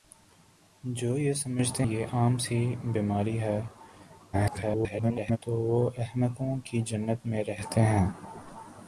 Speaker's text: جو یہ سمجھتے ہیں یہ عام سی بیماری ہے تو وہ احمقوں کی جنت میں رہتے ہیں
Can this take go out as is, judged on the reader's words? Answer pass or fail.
fail